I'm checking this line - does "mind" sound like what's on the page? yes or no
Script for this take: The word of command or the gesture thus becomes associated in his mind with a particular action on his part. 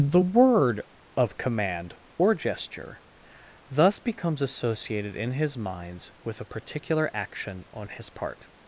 no